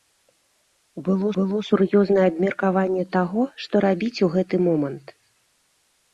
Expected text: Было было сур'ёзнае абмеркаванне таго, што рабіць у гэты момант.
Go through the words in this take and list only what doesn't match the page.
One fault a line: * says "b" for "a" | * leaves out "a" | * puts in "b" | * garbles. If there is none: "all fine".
all fine